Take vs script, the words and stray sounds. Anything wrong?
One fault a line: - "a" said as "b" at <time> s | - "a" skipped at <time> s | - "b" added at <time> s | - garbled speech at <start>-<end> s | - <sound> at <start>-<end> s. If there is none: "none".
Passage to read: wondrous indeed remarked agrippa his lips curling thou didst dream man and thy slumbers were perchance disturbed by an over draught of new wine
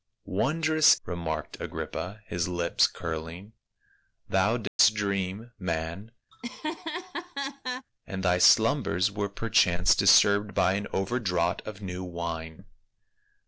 - "indeed" skipped at 0.9 s
- dropout at 4.7-4.8 s
- laugh at 6.3-7.9 s